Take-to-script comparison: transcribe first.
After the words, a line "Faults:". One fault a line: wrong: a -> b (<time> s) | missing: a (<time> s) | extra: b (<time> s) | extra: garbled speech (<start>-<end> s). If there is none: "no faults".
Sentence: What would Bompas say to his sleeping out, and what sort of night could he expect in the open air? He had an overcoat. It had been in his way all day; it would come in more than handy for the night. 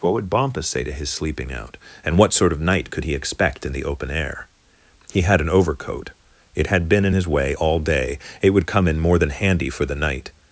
What would Bompas say to his sleeping out, and what sort of night could he expect in the open air? He had an overcoat. It had been in his way all day; it would come in more than handy for the night.
Faults:
no faults